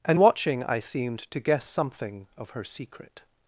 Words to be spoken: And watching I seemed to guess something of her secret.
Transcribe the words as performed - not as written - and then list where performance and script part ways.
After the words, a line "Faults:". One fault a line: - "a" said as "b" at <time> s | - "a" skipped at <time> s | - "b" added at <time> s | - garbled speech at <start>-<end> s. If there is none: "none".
And watching I seemed to guess something of her secret.
Faults:
none